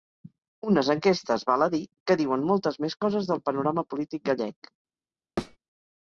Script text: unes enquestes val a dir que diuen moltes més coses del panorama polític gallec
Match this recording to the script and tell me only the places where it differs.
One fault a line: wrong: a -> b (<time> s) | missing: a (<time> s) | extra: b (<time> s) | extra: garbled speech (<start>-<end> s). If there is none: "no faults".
no faults